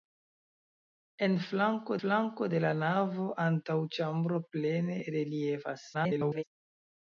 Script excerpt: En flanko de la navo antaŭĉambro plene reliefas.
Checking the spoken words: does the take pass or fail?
fail